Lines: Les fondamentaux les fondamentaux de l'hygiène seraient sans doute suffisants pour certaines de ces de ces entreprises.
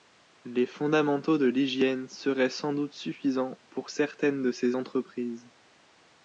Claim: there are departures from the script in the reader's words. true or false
true